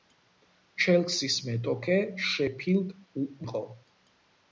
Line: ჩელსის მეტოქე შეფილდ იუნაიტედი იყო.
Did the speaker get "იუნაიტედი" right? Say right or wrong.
wrong